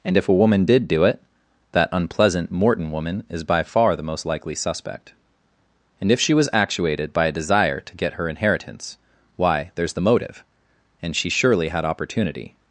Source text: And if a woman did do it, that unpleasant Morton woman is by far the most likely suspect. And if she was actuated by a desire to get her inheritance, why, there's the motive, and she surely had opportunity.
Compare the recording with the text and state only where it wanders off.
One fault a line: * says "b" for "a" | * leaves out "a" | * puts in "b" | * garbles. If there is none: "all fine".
all fine